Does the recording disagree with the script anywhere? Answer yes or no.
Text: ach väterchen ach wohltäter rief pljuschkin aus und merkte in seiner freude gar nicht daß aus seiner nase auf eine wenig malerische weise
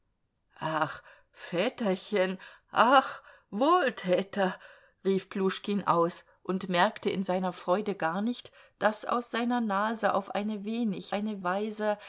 yes